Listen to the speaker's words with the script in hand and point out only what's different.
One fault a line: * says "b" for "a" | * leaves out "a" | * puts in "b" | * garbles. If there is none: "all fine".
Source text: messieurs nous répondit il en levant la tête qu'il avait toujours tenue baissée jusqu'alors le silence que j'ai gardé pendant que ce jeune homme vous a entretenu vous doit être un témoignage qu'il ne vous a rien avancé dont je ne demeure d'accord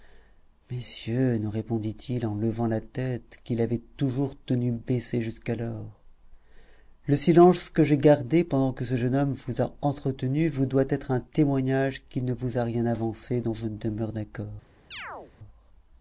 all fine